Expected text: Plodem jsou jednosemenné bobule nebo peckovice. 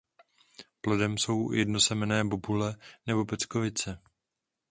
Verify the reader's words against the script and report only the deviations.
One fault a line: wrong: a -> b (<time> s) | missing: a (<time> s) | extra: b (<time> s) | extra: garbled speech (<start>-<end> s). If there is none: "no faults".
no faults